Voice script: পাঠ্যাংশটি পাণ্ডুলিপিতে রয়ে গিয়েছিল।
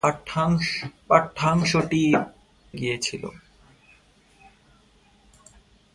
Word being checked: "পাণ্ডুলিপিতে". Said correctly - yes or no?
no